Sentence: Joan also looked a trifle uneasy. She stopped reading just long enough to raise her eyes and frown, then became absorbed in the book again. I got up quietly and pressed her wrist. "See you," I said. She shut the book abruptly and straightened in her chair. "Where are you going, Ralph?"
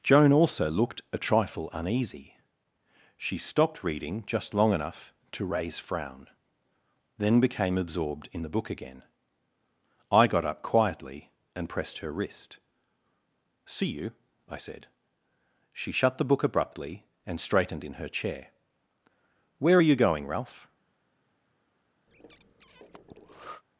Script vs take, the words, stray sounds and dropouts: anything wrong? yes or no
yes